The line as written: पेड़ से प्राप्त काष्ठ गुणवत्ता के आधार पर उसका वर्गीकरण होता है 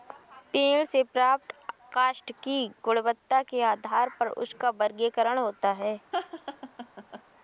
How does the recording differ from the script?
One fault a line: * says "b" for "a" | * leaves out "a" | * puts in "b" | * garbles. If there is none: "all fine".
* puts in "की"